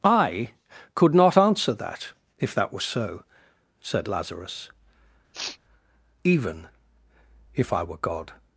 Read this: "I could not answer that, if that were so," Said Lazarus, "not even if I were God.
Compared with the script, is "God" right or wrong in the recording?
right